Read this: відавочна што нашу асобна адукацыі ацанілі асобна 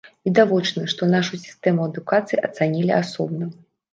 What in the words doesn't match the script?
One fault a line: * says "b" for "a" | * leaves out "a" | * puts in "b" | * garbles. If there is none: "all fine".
* says "сістэму" for "асобна"